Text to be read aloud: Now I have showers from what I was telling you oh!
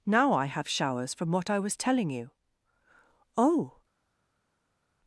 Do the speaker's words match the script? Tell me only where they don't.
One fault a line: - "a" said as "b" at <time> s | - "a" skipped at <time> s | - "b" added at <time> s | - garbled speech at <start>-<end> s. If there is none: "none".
none